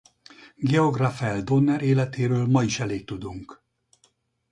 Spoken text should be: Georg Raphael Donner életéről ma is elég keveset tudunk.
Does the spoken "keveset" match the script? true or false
false